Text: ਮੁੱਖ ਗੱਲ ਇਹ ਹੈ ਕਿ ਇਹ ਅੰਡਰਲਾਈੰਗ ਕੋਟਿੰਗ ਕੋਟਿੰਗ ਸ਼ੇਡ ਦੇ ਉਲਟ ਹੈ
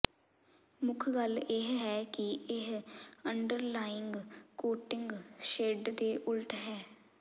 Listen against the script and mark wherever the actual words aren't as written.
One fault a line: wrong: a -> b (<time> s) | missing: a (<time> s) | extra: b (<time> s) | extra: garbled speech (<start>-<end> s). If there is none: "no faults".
missing: ਕੋਟਿੰਗ (5.1 s)